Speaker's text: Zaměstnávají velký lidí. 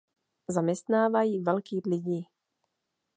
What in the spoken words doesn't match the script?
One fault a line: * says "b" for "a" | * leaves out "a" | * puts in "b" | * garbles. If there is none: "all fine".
all fine